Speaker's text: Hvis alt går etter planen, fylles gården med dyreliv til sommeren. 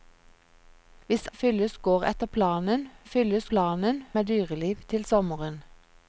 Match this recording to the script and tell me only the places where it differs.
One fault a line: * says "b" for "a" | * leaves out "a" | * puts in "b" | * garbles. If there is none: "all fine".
* says "fylles" for "alt"
* says "planen" for "gården"